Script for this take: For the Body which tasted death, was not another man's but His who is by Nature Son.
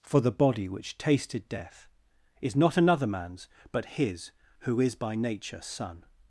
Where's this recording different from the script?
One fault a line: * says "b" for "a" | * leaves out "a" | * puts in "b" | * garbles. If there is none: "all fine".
* says "is" for "was"